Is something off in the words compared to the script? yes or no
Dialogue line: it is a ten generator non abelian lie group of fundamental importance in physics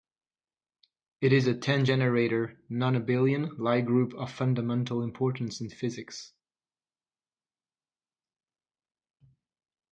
no